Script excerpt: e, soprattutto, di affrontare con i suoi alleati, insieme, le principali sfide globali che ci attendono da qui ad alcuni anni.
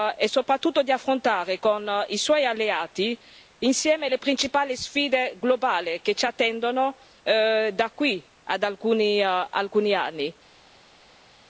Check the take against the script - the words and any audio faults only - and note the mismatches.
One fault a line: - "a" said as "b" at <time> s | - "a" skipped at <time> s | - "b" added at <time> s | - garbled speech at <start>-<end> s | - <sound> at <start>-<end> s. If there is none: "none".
none